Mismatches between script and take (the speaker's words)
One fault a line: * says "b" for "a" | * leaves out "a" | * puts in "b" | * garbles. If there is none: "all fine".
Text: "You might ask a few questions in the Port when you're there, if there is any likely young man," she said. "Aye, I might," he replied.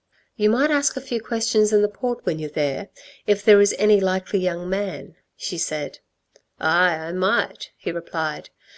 all fine